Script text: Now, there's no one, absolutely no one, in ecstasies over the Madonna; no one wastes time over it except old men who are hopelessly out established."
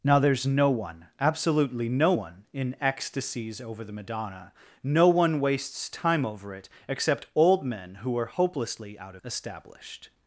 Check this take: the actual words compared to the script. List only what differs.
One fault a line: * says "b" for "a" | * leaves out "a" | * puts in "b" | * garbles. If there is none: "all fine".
all fine